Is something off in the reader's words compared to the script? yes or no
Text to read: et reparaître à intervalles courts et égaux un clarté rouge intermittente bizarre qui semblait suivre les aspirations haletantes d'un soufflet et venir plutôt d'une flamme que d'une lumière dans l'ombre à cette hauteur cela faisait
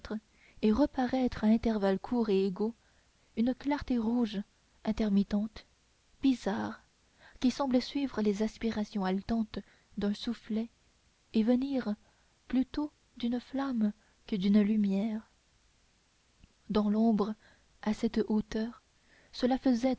yes